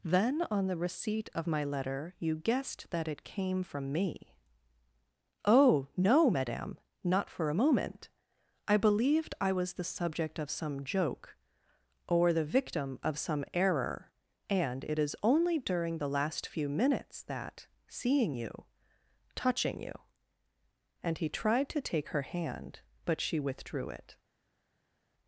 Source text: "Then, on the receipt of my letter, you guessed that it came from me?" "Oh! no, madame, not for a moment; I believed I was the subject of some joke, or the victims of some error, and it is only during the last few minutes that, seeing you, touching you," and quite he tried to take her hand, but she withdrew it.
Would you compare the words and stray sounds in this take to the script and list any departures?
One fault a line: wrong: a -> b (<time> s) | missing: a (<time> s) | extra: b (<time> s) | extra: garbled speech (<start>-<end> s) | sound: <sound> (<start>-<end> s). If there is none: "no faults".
wrong: victims -> victim (12.4 s)
missing: quite (21.2 s)